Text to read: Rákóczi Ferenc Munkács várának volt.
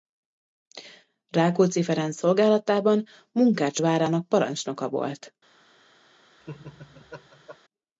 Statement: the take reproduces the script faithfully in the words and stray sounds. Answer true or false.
false